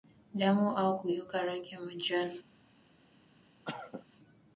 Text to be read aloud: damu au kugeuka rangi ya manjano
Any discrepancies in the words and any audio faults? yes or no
yes